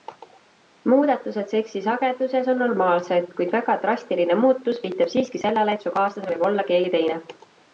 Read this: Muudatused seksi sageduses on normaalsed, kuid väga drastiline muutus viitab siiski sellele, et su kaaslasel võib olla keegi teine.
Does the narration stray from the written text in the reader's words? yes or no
no